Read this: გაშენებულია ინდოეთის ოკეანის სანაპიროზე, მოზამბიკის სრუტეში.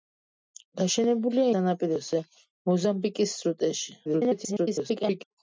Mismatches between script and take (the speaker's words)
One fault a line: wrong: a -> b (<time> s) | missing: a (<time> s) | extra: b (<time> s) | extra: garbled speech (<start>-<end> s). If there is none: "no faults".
missing: ინდოეთის ოკეანის (1.4 s)
extra: garbled speech (4.0-5.2 s)